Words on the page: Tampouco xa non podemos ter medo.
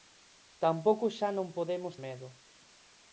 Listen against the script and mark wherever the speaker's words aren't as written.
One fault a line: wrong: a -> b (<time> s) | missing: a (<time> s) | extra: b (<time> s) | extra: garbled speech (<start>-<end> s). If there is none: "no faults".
missing: ter (1.9 s)